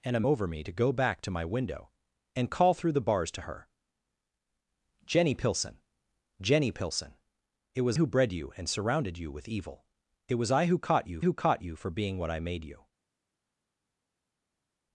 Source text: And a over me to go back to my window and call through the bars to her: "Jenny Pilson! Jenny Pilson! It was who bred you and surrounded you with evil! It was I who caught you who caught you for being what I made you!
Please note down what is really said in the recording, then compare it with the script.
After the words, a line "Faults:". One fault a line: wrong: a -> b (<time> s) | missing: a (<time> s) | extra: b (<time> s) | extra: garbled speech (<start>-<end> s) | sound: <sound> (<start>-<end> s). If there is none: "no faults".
And a over me to go back to my window and call through the bars to her: "Jenny Pilson! Jenny Pilson! It was who bred you and surrounded you with evil! It was I who caught you who caught you for being what I made you!
Faults:
no faults